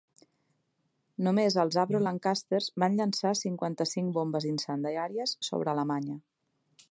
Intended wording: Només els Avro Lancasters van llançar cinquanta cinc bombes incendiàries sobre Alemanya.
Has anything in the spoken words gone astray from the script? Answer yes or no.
no